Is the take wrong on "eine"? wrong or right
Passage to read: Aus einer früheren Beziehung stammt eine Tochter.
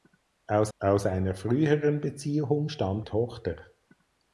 wrong